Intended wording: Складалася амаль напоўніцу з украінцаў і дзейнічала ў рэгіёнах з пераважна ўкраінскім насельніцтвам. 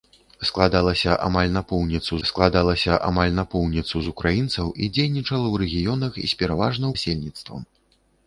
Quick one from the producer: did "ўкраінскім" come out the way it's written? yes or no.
no